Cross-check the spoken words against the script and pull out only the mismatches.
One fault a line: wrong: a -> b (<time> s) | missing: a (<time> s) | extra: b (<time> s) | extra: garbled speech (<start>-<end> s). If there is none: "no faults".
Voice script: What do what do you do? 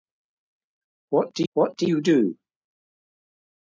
no faults